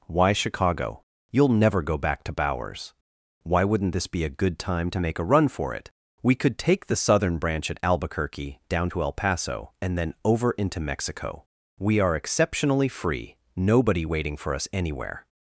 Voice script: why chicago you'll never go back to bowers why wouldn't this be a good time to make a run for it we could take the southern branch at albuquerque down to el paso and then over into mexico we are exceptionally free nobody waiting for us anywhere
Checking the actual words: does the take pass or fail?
pass